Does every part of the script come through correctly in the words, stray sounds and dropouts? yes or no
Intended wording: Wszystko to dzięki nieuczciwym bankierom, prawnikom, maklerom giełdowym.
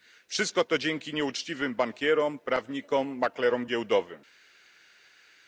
yes